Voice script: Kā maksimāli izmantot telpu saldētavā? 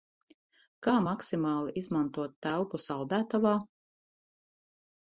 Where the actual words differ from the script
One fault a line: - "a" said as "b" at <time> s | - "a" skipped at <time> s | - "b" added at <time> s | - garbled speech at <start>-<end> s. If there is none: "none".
none